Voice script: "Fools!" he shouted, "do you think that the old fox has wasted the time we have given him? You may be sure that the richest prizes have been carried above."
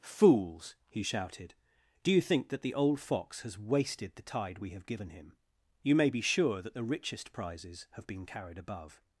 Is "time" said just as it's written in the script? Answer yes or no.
no